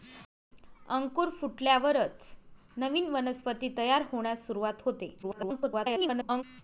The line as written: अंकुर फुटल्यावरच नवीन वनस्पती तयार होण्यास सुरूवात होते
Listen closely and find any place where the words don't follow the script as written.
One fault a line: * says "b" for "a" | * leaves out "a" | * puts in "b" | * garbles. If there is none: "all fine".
* garbles